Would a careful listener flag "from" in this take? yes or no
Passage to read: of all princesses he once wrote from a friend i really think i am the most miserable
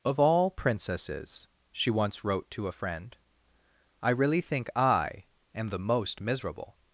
yes